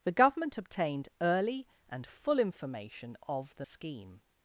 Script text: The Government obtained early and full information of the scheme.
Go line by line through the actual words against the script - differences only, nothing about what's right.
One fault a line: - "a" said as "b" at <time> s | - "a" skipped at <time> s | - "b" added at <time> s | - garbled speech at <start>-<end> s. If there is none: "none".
none